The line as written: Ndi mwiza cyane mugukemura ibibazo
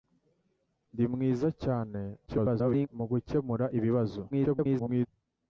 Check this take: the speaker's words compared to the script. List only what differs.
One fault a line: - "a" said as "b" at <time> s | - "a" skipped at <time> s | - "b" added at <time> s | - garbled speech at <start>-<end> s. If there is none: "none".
- garbled speech at 2.3-2.9 s
- garbled speech at 4.3-5.1 s